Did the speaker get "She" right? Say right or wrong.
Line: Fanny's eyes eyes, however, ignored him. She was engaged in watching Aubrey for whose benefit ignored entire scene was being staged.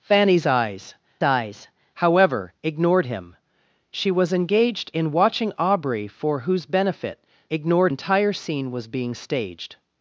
right